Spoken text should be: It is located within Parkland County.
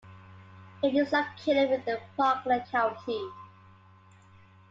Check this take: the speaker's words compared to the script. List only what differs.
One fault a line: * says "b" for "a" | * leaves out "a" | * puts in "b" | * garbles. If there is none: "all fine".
all fine